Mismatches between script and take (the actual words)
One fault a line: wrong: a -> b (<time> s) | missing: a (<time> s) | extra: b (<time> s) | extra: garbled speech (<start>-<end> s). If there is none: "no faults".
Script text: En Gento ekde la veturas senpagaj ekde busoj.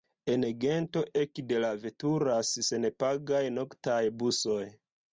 wrong: ekde -> noktaj (3.6 s)